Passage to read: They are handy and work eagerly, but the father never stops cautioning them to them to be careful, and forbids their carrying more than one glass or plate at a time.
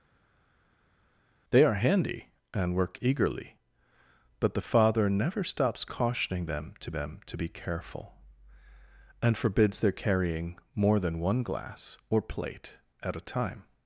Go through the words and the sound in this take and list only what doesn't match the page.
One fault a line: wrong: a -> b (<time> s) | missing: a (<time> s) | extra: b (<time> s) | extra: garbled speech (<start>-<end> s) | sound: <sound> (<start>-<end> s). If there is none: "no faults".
no faults